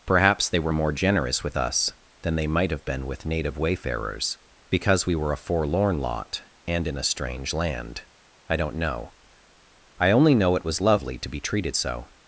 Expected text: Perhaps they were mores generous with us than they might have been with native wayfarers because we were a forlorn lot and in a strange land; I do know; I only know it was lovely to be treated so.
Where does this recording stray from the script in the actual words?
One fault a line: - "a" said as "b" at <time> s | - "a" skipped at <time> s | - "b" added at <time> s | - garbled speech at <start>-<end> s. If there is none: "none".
- "mores" said as "more" at 0.7 s
- "do" said as "don't" at 8.6 s